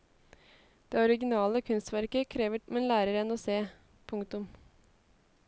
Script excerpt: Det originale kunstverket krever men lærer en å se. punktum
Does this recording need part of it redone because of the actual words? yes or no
no